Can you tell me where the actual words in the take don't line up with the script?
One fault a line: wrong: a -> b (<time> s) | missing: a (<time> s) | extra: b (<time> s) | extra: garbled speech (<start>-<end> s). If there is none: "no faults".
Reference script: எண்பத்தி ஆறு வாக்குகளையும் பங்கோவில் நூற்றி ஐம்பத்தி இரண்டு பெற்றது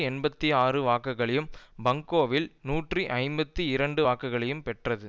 extra: வாக்குகளையும் (4.0 s)